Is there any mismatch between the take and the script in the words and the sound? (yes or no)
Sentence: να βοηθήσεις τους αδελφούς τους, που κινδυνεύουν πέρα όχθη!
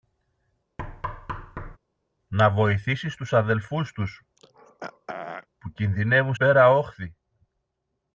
yes